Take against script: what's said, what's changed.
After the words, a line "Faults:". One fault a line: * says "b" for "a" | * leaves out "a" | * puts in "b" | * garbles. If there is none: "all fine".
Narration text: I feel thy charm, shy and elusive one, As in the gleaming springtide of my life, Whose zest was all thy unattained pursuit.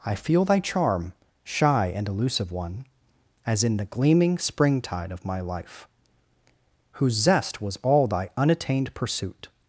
I feel thy charm, shy and elusive one, As in the gleaming springtide of my life, Whose zest was all thy unattained pursuit.
Faults:
all fine